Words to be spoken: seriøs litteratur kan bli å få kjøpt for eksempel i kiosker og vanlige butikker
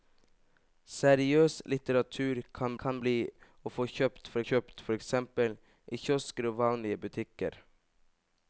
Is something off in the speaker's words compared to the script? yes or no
yes